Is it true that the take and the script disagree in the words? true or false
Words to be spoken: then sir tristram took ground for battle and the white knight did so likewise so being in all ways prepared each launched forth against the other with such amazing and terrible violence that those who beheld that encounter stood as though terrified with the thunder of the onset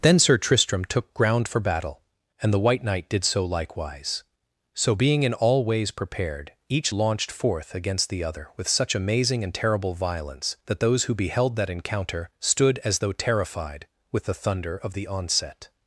false